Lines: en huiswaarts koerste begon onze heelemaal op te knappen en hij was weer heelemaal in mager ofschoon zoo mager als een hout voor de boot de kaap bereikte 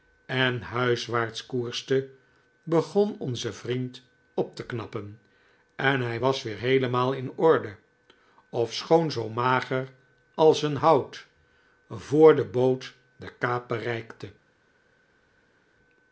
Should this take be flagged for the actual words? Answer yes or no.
yes